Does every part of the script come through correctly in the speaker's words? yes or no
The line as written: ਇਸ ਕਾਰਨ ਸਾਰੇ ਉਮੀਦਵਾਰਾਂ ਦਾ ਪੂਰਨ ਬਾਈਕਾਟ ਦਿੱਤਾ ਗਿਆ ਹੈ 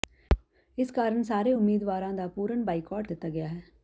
yes